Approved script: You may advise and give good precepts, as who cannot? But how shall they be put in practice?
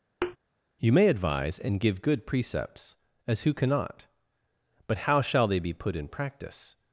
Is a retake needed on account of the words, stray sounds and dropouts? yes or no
yes